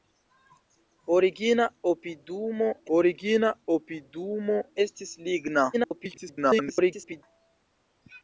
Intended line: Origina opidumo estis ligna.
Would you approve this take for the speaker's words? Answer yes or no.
no